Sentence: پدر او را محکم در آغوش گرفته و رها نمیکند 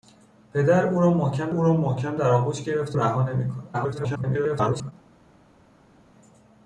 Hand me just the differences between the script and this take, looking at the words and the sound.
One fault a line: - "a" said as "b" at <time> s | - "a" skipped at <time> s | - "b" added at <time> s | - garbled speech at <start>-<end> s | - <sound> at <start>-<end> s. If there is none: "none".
- "او را محکم" added at 1.5 s
- "و" skipped at 3.0 s
- garbled speech at 3.7-4.9 s